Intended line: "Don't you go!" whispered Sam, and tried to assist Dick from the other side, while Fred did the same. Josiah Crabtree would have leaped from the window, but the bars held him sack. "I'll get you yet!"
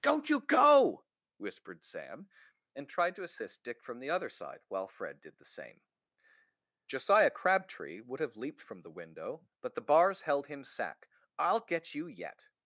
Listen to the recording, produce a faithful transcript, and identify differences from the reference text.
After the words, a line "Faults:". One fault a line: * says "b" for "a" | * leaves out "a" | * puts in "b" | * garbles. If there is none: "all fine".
"Don't you go!" whispered Sam, and tried to assist Dick from the other side, while Fred did the same. Josiah Crabtree would have leaped from the window, but the bars held him sack. "I'll get you yet!"
Faults:
all fine